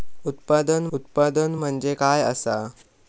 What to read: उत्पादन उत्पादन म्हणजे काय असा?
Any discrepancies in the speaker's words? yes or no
no